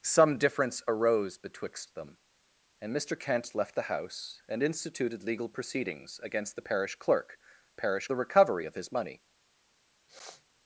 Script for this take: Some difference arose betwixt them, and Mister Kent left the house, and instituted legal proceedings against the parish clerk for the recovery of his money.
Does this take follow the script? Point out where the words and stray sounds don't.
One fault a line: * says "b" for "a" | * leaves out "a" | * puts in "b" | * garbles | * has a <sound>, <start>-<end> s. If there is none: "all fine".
* says "parish" for "for"
* has a sniff, 10.1-10.5 s